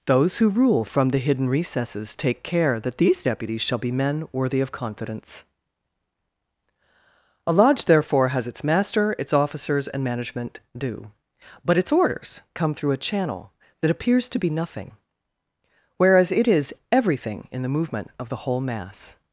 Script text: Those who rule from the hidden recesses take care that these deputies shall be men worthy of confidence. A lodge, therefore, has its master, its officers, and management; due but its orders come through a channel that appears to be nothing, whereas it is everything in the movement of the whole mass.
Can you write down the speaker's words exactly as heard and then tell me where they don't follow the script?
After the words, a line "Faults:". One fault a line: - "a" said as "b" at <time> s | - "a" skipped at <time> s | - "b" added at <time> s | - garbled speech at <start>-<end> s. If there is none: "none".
Those who rule from the hidden recesses take care that these deputies shall be men worthy of confidence. A lodge, therefore, has its master, its officers, and management; due but its orders come through a channel that appears to be nothing, whereas it is everything in the movement of the whole mass.
Faults:
none